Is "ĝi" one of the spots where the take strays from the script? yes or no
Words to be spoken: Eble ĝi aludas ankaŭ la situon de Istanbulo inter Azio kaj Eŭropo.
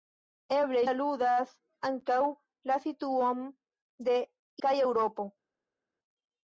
yes